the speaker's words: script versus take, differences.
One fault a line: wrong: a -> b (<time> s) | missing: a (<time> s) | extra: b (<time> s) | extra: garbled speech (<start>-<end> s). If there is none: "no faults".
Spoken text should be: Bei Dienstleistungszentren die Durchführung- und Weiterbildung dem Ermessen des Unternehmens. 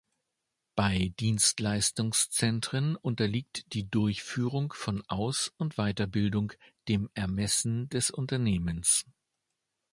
extra: unterliegt (3.0 s)
extra: von Aus (4.7 s)